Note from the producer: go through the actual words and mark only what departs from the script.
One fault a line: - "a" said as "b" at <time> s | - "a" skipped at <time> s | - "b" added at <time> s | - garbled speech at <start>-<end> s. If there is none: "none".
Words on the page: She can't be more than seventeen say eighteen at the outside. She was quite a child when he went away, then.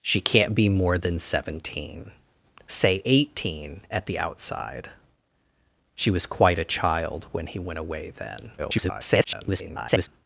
- garbled speech at 8.6-10.1 s